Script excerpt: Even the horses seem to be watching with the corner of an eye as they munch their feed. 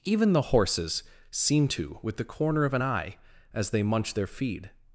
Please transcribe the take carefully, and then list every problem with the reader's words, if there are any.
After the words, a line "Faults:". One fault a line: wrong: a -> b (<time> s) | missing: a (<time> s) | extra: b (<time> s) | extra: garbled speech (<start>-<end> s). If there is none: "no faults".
Even the horses seem to with the corner of an eye as they munch their feed.
Faults:
missing: be watching (2.0 s)